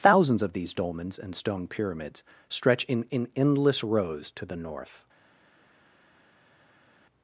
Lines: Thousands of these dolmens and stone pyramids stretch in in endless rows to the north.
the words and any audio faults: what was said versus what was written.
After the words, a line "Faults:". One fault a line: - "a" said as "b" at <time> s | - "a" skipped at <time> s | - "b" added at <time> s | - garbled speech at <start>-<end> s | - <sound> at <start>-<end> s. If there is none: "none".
Thousands of these dolmens and stone pyramids stretch in in endless rows to the north.
Faults:
none